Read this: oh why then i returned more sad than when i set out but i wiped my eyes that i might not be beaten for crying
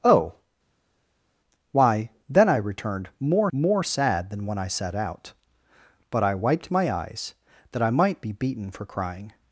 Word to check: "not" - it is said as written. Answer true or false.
false